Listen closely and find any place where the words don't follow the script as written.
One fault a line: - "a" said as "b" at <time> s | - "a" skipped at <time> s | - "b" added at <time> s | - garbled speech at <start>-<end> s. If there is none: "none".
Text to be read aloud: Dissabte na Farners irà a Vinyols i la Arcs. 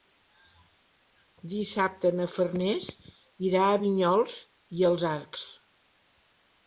- "la" said as "els" at 4.9 s